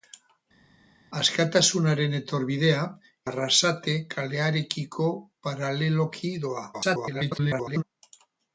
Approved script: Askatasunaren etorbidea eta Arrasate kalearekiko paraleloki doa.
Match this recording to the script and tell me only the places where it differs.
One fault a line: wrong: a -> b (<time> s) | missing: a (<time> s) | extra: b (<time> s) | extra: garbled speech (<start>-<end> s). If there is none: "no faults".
missing: eta (2.8 s)
extra: garbled speech (6.7-7.8 s)